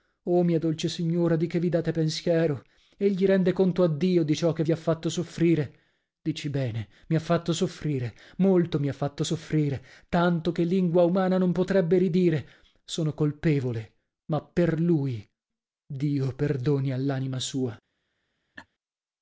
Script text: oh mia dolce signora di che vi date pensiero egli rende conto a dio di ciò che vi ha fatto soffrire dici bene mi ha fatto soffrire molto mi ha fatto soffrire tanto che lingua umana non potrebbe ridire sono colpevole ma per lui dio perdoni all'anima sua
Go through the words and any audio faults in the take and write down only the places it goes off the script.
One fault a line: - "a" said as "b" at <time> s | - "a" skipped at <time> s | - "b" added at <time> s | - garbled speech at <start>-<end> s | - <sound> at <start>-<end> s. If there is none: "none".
- laugh at 18.6-18.7 s